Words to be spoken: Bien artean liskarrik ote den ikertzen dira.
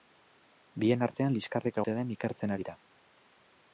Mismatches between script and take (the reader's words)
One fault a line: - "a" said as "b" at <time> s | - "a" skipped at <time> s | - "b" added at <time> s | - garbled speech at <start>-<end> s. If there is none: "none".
none